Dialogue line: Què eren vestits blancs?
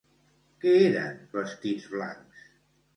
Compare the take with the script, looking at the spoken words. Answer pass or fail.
pass